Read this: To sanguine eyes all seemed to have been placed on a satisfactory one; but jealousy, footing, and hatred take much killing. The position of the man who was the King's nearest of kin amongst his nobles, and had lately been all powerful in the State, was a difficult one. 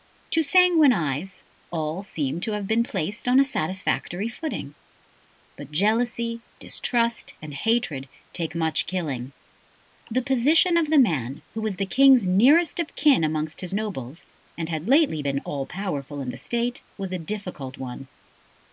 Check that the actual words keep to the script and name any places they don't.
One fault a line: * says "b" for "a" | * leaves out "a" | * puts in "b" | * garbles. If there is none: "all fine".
* says "footing" for "one"
* says "distrust" for "footing"